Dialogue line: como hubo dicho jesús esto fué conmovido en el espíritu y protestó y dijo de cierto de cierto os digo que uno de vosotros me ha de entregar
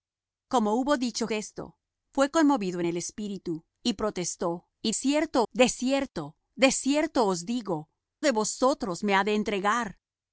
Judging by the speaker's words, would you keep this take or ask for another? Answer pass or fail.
fail